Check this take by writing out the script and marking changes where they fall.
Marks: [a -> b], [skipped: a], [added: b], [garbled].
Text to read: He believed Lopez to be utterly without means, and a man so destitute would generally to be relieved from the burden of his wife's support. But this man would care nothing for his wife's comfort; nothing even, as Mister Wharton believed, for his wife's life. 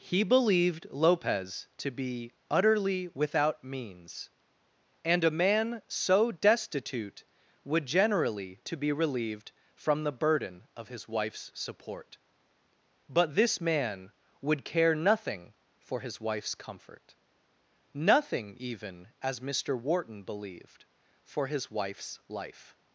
He believed Lopez to be utterly without means, and a man so destitute would generally to be relieved from the burden of his wife's support. But this man would care nothing for his wife's comfort; nothing even, as Mister Wharton believed, for his wife's life.